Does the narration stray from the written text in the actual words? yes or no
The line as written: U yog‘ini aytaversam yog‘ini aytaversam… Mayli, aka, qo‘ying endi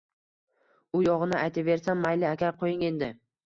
yes